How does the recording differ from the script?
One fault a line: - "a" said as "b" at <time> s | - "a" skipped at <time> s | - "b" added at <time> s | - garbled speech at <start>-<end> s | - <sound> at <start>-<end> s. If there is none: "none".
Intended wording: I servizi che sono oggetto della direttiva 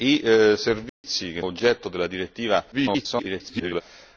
- dropout at 0.9-1.0 s
- "sono" skipped at 1.4 s
- garbled speech at 2.7-3.8 s